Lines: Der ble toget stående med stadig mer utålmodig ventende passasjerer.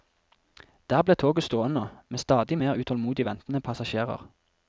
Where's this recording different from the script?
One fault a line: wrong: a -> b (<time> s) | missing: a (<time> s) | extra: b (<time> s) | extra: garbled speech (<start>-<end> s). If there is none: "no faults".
no faults